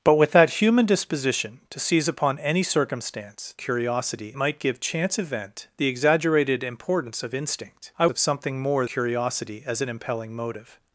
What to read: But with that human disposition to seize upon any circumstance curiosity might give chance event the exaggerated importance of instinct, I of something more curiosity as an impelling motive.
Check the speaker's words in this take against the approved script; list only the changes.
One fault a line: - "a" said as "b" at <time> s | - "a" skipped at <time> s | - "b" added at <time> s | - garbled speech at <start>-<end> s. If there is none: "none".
none